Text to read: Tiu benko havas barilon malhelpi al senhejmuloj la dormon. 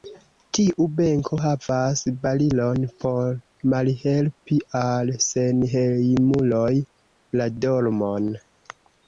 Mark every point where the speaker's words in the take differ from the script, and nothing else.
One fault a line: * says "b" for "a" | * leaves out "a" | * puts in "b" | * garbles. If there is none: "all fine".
* puts in "por"